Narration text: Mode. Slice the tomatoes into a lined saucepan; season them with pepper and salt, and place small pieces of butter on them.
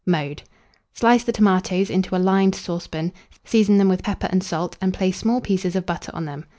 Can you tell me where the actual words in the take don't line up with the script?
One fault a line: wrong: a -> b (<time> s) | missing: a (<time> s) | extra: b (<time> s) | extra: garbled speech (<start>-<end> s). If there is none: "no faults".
no faults